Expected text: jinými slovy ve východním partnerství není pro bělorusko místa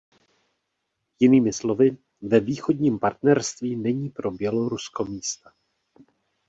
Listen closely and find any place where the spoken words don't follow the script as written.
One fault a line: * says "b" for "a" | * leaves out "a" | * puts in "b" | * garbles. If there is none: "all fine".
all fine